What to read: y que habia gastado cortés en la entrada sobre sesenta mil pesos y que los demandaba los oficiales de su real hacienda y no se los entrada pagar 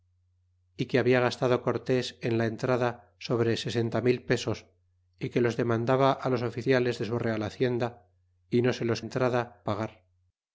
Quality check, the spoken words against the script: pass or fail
pass